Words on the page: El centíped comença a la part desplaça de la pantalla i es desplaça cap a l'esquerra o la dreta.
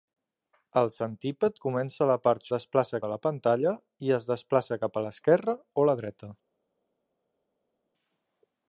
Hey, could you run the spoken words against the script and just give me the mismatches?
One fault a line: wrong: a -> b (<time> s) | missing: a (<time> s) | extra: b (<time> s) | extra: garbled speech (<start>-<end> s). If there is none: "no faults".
no faults